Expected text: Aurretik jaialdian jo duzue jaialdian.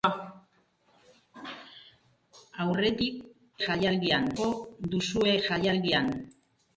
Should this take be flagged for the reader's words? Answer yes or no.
no